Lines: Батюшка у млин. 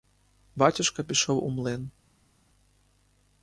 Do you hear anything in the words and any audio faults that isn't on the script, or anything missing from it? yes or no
yes